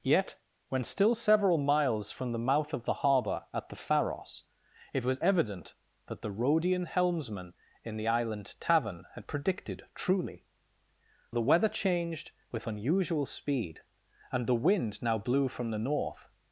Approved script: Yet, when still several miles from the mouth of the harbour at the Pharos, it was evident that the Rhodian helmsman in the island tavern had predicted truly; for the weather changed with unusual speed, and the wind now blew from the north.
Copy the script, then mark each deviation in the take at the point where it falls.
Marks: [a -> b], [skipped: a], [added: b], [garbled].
Yet, when still several miles from the mouth of the harbour at the Pharos, it was evident that the Rhodian helmsman in the island tavern had predicted truly; [skipped: for] the weather changed with unusual speed, and the wind now blew from the north.